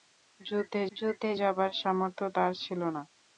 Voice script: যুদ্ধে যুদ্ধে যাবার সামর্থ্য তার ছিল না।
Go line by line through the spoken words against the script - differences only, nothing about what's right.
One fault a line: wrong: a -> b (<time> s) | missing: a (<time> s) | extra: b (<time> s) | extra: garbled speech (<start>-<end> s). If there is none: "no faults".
no faults